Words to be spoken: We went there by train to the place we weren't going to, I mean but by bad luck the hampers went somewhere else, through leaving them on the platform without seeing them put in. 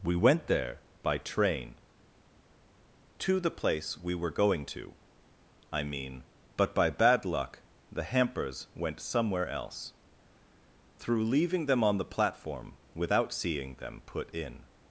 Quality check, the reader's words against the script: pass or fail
fail